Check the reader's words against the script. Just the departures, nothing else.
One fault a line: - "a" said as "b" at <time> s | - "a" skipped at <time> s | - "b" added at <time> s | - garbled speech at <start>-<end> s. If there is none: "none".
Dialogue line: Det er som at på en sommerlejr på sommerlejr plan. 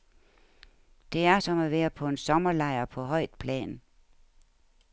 - "være" added at 1.7 s
- "sommerlejr" said as "højt" at 3.0 s